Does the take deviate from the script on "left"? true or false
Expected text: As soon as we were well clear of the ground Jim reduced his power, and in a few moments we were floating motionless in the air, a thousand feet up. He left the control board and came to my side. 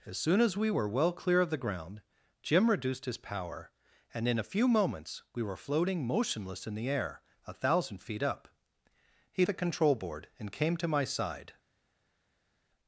true